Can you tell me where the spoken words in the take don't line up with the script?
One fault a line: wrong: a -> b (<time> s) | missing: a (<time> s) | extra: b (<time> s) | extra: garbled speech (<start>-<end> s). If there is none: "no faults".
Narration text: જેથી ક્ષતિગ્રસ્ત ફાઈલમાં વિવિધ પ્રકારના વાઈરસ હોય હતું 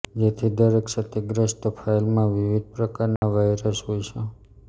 extra: દરેક (0.5 s)
wrong: હતું -> છે (4.1 s)